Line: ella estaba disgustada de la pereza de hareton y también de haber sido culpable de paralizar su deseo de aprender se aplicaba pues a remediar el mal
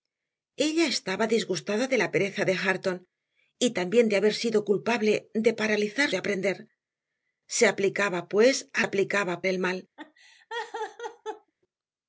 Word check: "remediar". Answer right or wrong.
wrong